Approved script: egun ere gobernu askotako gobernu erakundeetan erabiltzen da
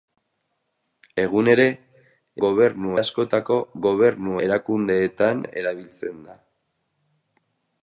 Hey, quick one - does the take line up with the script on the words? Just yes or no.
yes